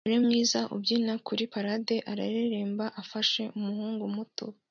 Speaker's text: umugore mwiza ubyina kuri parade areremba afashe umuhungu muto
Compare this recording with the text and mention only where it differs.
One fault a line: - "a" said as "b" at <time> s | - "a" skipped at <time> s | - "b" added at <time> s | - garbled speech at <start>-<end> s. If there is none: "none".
none